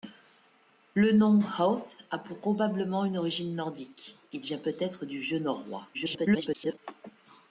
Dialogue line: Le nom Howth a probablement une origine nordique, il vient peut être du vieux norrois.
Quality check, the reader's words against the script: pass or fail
fail